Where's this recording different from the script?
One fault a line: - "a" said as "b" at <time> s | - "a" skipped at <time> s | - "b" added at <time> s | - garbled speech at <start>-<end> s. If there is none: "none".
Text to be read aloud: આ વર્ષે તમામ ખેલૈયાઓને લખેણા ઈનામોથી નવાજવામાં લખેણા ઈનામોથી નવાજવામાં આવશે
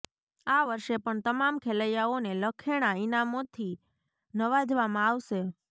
- "પણ" added at 1.0 s
- "લખેણા ઈનામોથી નવાજવામાં" skipped at 5.1 s